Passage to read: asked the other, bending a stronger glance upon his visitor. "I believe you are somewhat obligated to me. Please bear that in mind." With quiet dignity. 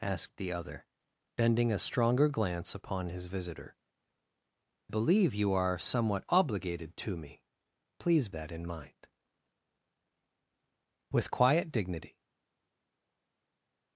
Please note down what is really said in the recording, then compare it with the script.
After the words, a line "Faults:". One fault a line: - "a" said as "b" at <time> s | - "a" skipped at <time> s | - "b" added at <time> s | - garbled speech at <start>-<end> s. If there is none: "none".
asked the other, bending a stronger glance upon his visitor. "believe you are somewhat obligated to me. Please that in mind." With quiet dignity.
Faults:
- "I" skipped at 3.8 s
- "bear" skipped at 8.3 s